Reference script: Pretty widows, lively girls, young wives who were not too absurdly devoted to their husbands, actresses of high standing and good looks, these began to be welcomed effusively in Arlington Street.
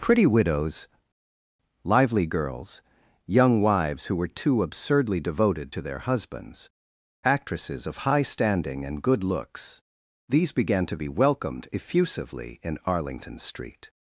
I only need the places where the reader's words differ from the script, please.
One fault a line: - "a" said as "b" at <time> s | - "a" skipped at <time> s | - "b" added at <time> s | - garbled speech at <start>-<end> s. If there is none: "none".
- "not" skipped at 4.3 s